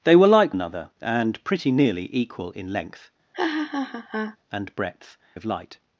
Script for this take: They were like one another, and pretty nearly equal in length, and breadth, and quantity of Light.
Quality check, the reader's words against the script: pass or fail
fail